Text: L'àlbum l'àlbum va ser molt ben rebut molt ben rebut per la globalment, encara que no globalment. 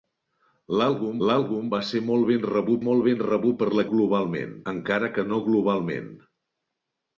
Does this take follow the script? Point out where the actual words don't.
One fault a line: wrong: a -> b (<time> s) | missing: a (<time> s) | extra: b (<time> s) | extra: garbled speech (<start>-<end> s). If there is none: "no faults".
no faults